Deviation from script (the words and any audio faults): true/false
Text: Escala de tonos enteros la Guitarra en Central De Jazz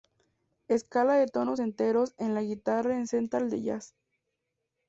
true